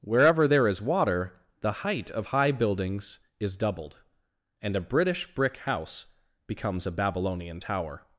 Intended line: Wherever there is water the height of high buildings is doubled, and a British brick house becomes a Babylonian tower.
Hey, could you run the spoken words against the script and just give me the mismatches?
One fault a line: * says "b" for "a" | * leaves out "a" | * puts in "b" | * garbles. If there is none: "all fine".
all fine